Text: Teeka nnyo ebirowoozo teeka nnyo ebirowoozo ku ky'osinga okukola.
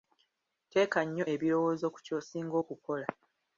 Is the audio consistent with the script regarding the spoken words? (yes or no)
no